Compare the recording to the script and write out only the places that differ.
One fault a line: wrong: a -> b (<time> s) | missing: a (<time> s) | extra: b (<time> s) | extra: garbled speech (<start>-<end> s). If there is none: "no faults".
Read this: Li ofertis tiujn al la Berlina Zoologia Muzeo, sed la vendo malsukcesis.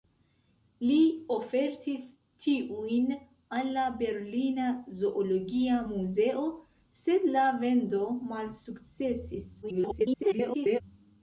extra: garbled speech (9.6-10.8 s)